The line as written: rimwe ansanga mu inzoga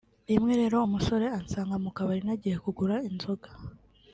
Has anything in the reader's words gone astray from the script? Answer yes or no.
yes